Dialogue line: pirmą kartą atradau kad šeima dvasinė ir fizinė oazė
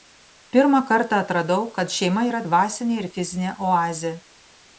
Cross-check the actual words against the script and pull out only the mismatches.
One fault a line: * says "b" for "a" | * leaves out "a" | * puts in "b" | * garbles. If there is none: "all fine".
* puts in "yra"